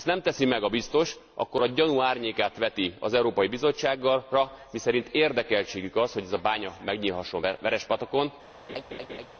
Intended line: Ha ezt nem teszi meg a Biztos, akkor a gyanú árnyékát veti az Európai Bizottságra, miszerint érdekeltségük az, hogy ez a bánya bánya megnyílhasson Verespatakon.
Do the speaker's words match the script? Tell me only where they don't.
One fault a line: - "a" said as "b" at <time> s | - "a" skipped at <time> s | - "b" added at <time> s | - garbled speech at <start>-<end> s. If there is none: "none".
- "bánya" skipped at 6.7 s